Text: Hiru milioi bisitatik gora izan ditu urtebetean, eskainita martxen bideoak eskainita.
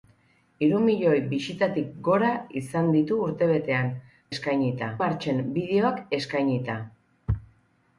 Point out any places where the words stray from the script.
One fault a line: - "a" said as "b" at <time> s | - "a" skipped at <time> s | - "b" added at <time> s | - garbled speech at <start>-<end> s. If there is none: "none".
none